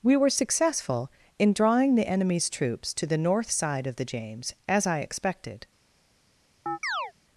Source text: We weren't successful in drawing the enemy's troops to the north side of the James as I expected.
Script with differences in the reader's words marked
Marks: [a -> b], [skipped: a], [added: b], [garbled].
We [weren't -> were] successful in drawing the enemy's troops to the north side of the James as I expected.